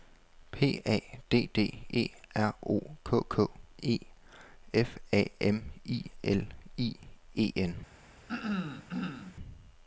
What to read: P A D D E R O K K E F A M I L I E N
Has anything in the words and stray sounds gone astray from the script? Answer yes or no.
yes